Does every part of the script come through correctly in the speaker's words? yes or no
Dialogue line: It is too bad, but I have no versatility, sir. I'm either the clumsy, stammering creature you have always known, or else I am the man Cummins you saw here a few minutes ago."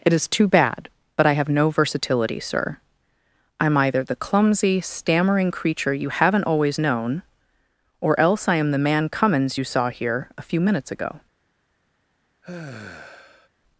no